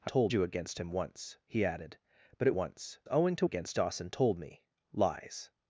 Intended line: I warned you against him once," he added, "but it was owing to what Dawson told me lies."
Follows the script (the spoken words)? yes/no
no